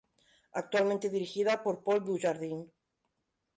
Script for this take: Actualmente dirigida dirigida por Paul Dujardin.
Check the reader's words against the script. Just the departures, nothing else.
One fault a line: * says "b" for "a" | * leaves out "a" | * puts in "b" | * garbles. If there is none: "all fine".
* leaves out "dirigida"